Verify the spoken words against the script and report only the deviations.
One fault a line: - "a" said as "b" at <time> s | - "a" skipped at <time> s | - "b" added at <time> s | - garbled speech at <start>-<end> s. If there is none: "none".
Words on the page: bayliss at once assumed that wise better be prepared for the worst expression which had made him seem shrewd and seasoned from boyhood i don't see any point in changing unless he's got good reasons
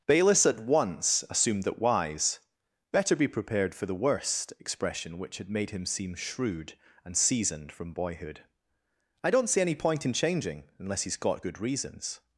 none